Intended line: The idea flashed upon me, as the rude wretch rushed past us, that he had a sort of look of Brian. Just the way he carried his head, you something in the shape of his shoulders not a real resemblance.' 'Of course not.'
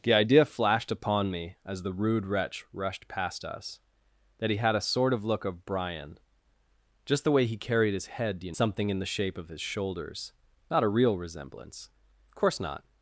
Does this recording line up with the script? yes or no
yes